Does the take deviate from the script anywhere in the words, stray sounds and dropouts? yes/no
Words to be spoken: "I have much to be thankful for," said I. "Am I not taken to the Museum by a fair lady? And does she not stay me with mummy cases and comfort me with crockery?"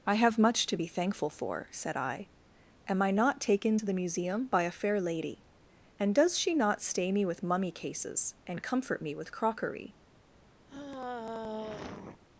yes